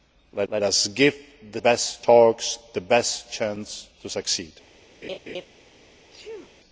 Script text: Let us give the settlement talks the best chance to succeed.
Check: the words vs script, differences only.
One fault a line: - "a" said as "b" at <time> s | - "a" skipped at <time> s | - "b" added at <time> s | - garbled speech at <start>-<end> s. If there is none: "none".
- "let" added at 0.5 s
- "settlement" said as "best" at 1.6 s